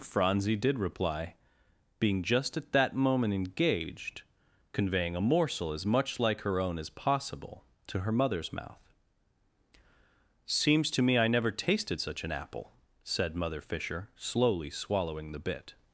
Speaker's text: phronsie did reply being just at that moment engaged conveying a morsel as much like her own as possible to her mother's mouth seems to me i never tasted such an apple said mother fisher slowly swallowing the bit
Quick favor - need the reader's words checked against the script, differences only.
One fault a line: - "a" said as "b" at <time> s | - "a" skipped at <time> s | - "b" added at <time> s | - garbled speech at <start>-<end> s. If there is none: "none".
none